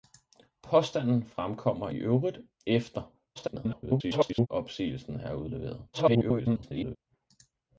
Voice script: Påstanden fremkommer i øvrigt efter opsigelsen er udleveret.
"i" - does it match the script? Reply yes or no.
no